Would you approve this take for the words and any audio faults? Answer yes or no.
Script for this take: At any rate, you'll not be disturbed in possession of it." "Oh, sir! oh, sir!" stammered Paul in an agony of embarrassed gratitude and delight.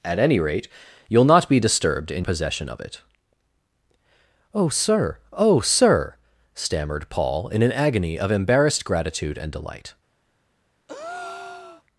no